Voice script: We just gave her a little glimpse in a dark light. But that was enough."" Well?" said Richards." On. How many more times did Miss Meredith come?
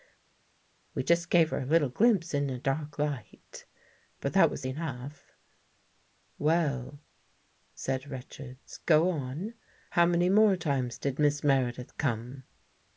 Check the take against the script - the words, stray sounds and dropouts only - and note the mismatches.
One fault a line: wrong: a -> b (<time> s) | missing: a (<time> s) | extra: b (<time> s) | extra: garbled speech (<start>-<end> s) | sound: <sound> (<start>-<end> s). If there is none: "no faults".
extra: Go (8.8 s)